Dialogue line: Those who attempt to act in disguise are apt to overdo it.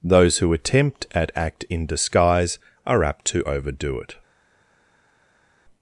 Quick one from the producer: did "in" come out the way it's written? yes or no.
yes